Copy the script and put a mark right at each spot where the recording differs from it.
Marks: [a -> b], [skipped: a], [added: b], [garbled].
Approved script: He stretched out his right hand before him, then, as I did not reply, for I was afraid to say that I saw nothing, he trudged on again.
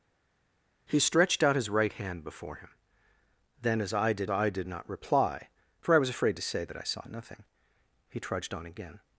He stretched out his right hand before him, then, as I did [added: I did] not reply, for I was afraid to say that I saw nothing, he trudged on again.